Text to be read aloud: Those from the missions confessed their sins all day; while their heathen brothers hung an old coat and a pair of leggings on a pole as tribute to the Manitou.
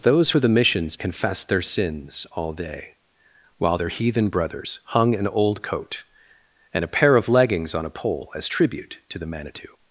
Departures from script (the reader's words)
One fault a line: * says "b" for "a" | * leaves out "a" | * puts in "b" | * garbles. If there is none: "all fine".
* says "for" for "from"